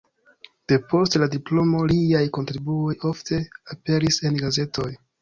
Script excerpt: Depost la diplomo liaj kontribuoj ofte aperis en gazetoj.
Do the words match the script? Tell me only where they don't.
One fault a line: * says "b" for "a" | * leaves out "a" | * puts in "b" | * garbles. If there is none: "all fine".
all fine